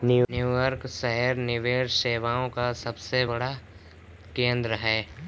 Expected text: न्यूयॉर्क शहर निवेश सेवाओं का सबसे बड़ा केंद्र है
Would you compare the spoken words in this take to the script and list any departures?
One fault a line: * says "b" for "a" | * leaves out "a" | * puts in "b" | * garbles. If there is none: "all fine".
all fine